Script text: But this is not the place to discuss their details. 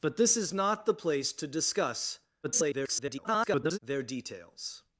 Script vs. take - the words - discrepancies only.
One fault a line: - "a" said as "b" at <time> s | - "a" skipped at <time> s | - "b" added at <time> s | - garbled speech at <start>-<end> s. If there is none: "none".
- garbled speech at 2.4-3.8 s